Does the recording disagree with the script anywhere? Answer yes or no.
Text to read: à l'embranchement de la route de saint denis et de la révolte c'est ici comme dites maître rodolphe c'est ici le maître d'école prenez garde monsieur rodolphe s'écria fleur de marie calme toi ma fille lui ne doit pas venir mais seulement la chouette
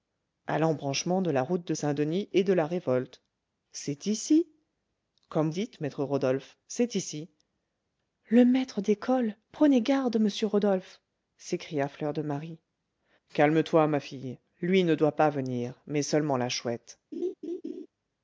no